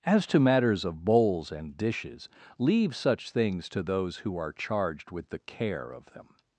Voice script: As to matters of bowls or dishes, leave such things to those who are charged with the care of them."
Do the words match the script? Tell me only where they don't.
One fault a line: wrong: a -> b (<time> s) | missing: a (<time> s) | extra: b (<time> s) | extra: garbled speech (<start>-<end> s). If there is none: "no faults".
wrong: or -> and (1.5 s)